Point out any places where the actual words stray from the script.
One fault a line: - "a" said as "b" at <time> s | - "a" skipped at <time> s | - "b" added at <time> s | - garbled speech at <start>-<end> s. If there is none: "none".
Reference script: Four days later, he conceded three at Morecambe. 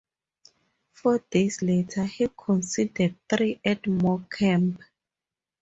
none